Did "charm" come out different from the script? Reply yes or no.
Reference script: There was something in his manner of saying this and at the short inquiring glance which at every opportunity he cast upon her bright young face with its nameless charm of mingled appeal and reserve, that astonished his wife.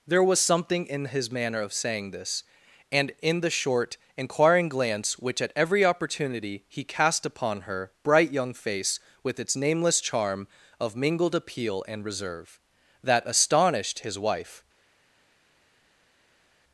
no